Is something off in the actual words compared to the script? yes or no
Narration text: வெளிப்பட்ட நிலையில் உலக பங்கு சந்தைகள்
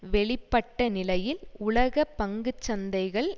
no